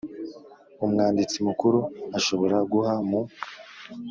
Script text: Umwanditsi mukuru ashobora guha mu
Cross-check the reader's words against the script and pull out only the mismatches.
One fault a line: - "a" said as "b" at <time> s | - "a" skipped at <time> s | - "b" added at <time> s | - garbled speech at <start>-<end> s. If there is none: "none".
none